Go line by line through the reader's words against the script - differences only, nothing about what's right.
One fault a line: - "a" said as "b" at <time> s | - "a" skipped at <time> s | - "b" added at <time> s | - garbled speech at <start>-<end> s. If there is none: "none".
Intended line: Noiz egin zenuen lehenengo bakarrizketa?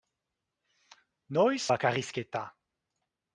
- "egin zenuen lehenengo" skipped at 1.6 s